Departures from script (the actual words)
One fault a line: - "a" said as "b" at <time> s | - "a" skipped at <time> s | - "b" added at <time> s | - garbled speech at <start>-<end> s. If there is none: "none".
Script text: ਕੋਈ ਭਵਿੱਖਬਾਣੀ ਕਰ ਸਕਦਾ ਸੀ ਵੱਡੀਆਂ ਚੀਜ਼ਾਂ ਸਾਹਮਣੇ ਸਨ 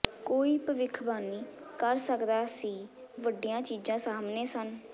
none